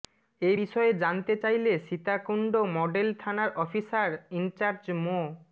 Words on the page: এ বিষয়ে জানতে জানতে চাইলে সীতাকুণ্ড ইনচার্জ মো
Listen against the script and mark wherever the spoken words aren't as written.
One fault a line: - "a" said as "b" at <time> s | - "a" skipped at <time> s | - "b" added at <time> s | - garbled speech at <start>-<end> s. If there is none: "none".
- "জানতে" skipped at 1.3 s
- "মডেল থানার অফিসার" added at 2.8 s